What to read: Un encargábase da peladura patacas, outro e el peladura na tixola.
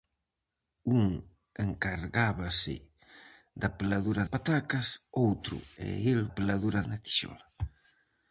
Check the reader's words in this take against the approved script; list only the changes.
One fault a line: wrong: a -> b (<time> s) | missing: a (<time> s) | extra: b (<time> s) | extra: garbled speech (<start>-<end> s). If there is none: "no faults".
no faults